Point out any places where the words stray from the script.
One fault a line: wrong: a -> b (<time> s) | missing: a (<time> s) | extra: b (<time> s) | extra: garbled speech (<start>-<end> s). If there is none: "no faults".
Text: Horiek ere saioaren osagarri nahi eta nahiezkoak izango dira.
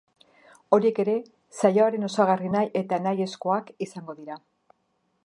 no faults